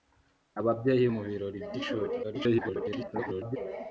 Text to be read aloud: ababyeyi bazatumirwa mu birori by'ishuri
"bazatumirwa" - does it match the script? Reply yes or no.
no